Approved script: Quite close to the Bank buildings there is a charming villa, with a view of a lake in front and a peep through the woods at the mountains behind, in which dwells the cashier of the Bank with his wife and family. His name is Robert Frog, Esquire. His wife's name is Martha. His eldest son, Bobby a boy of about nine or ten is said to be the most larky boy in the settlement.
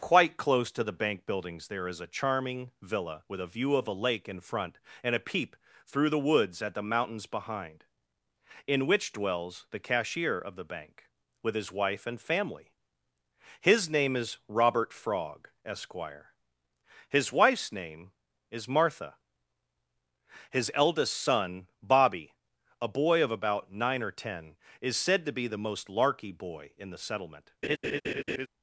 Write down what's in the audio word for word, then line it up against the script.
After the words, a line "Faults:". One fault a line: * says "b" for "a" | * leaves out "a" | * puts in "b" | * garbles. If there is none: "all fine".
Quite close to the Bank buildings there is a charming villa, with a view of a lake in front and a peep through the woods at the mountains behind, in which dwells the cashier of the Bank with his wife and family. His name is Robert Frog, Esquire. His wife's name is Martha. His eldest son, Bobby a boy of about nine or ten is said to be the most larky boy in the settlement.
Faults:
all fine